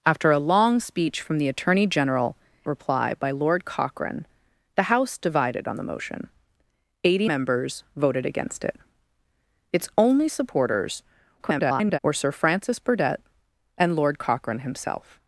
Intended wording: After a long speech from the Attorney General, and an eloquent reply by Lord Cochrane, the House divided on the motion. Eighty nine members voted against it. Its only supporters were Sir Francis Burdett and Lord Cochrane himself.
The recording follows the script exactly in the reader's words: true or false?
false